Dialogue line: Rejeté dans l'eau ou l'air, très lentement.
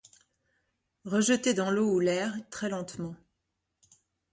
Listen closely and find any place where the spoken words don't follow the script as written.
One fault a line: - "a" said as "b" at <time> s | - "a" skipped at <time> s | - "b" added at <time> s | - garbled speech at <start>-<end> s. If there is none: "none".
none